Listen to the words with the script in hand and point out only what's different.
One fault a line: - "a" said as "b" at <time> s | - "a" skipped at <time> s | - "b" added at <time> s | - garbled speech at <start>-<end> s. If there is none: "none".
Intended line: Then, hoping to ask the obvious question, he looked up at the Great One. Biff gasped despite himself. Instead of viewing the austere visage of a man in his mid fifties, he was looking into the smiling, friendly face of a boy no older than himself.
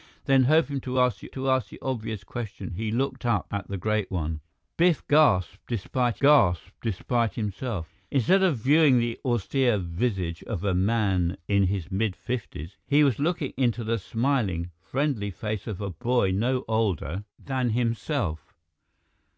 - "to ask the" added at 1.3 s
- "gasped despite" added at 6.2 s